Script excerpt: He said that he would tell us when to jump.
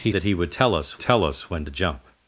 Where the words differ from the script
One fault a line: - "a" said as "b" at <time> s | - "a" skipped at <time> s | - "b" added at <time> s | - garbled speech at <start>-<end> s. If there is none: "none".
- "said" skipped at 0.1 s
- "tell us" added at 1.0 s